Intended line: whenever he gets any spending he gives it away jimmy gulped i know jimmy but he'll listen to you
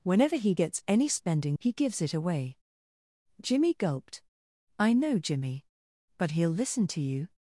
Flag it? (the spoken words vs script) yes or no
no